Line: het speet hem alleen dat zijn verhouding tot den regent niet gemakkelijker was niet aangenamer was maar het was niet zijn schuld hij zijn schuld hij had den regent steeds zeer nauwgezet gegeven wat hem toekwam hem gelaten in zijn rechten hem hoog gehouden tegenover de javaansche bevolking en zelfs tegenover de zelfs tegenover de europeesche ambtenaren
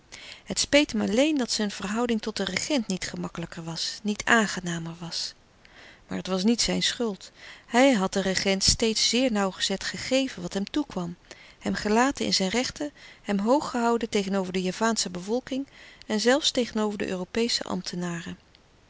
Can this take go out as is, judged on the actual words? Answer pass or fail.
fail